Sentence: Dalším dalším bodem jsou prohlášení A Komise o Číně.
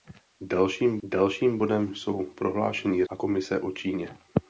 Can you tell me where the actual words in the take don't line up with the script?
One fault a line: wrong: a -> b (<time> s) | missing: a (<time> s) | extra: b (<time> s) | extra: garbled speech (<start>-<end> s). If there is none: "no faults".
no faults